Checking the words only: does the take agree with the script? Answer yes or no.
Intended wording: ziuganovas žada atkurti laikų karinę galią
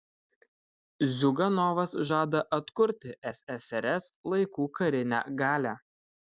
no